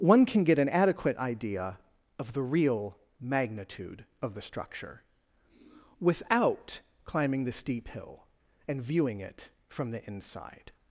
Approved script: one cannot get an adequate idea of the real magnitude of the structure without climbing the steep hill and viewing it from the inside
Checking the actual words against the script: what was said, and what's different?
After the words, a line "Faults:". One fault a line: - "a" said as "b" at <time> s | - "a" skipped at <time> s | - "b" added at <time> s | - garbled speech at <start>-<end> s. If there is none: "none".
one can get an adequate idea of the real magnitude of the structure without climbing the steep hill and viewing it from the inside
Faults:
- "cannot" said as "can" at 0.2 s